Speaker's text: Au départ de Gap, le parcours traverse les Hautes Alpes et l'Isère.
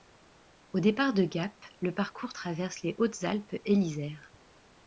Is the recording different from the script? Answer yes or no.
no